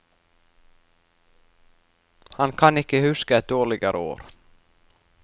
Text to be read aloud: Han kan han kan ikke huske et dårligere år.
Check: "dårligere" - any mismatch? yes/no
no